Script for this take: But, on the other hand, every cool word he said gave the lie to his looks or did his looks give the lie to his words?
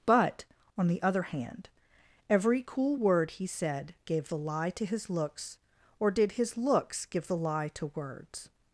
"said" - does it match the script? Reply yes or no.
yes